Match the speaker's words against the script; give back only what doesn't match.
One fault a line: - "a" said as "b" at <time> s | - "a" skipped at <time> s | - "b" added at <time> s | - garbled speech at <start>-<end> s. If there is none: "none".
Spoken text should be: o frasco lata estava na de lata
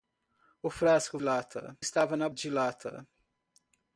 none